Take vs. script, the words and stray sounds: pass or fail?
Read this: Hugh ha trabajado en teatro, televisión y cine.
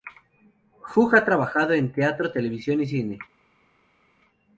pass